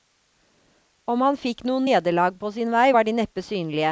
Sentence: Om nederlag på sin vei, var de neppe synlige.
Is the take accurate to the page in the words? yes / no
no